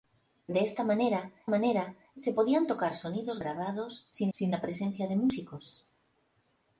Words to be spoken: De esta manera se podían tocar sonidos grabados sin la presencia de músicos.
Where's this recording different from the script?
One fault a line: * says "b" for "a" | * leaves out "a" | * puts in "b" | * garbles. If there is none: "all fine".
* puts in "manera"
* puts in "sin"